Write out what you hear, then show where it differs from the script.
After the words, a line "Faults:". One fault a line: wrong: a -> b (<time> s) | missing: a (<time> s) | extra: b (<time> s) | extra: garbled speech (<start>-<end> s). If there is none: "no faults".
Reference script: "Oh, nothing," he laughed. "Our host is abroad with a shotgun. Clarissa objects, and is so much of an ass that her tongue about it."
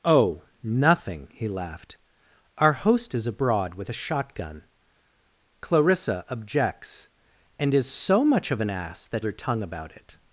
"Oh, nothing," he laughed. "Our host is abroad with a shotgun. Clarissa objects, and is so much of an ass that her tongue about it."
Faults:
no faults